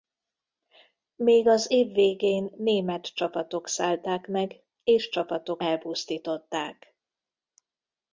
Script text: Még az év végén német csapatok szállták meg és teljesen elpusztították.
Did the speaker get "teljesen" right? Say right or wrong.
wrong